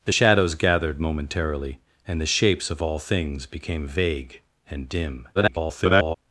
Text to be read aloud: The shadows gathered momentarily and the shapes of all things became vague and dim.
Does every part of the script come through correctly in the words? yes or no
no